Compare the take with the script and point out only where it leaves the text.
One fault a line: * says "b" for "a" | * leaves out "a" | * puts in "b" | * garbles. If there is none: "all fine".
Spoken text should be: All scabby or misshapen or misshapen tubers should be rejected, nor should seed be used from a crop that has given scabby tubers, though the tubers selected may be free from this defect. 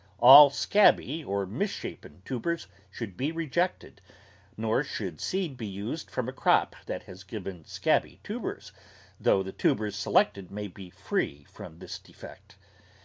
* leaves out "or misshapen"